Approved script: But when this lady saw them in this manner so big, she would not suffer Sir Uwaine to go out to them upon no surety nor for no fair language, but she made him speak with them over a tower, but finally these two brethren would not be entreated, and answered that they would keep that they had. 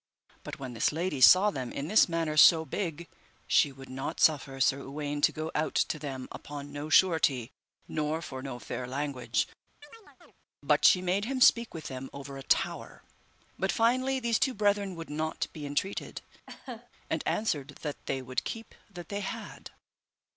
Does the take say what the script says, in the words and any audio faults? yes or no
no